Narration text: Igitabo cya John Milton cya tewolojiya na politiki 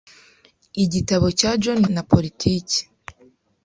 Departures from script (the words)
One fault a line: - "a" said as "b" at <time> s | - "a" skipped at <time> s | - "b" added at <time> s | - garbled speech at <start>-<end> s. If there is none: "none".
- "Milton cya tewolojiya" skipped at 1.8 s